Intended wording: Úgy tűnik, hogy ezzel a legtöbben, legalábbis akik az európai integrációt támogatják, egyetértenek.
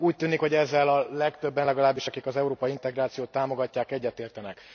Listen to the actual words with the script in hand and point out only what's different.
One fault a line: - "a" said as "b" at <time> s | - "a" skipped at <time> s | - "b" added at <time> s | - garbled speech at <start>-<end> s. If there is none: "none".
none